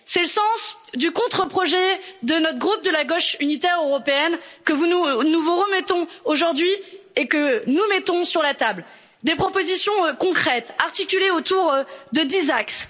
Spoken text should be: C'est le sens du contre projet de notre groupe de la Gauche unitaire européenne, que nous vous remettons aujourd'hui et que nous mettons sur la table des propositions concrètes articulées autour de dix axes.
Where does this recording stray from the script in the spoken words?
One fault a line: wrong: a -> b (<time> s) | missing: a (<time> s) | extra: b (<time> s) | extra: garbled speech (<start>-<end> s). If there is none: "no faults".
no faults